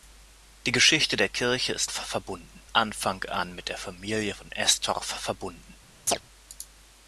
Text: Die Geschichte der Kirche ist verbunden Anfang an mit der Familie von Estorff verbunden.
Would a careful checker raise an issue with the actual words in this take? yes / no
no